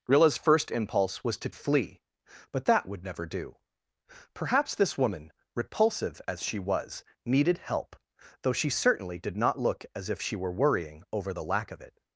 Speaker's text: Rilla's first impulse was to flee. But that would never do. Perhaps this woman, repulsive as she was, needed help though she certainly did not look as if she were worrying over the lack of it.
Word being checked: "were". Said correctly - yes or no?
yes